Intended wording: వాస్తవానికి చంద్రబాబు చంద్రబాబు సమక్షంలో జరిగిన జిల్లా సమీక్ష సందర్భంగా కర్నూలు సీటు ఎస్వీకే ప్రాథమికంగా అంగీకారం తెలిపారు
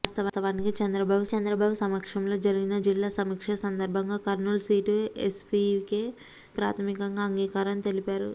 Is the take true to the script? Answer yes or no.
yes